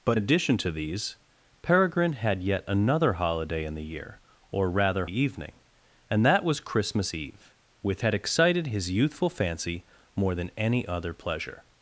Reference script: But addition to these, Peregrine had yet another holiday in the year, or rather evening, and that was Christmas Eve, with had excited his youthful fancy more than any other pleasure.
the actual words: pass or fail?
pass